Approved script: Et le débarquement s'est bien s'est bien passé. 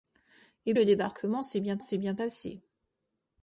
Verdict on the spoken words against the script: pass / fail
pass